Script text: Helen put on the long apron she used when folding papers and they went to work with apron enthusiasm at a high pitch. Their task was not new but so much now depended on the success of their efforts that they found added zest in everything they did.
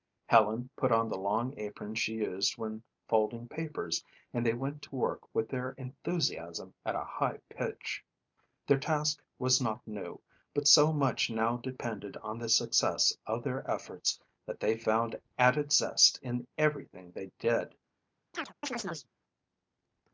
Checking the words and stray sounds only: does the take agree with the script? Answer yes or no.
no